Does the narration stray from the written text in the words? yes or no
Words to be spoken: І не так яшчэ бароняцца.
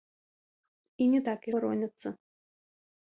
yes